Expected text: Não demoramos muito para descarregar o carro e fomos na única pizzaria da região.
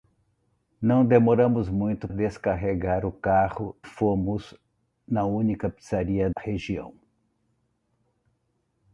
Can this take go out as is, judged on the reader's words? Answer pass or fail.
fail